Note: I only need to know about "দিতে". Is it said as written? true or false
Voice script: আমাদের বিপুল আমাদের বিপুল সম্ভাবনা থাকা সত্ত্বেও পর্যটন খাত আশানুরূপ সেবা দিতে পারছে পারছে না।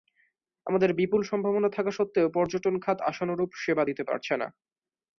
true